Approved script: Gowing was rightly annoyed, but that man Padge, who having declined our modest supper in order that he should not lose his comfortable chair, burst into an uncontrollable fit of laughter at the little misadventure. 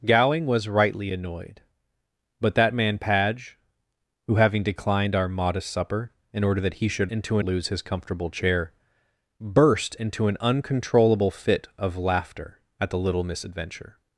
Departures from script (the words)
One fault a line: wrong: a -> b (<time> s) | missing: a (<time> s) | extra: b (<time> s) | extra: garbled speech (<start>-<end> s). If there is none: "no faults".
wrong: not -> into (7.1 s)